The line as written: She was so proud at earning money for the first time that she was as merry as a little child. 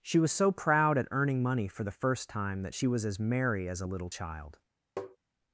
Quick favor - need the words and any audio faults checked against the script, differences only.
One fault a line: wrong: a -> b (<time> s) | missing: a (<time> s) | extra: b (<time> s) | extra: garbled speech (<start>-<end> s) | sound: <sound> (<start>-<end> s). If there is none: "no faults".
sound: tap (5.0-5.2 s)